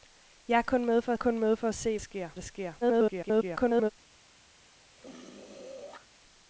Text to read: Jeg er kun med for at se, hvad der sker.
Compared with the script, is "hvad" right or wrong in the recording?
wrong